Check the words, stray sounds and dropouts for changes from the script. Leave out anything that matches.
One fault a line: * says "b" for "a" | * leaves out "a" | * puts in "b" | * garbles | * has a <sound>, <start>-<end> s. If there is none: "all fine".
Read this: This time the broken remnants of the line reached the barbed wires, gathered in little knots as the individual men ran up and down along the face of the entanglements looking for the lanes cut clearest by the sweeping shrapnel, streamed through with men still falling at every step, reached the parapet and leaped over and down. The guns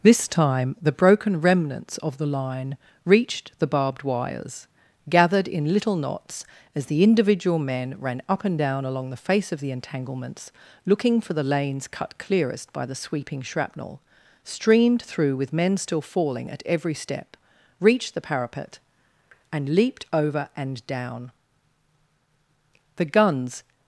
all fine